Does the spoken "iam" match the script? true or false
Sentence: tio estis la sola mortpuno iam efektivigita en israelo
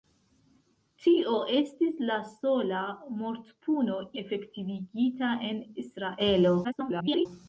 false